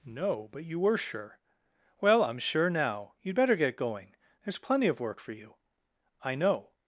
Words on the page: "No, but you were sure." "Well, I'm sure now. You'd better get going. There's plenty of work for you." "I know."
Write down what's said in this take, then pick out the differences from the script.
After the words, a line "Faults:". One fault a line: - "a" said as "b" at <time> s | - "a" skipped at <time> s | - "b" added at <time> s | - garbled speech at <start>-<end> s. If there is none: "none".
"No, but you were sure." "Well, I'm sure now. You'd better get going. There's plenty of work for you." "I know."
Faults:
none